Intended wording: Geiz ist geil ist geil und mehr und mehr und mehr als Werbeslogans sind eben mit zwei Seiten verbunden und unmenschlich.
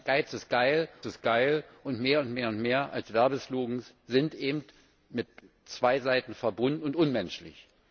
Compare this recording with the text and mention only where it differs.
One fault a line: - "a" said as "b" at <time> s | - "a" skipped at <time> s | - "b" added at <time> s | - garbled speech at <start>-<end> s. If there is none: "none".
none